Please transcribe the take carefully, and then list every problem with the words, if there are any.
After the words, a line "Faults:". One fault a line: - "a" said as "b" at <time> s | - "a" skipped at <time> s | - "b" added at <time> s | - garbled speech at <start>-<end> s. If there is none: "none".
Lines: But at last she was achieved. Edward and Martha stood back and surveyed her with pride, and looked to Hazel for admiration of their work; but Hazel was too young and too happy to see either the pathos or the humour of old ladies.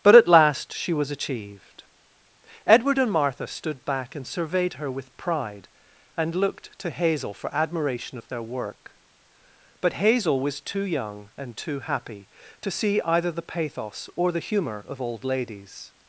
But at last she was achieved. Edward and Martha stood back and surveyed her with pride, and looked to Hazel for admiration of their work; but Hazel was too young and too happy to see either the pathos or the humour of old ladies.
Faults:
none